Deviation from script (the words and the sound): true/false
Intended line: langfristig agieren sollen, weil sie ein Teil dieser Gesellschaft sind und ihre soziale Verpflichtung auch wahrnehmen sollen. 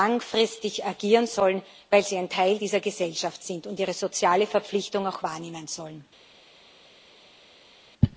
false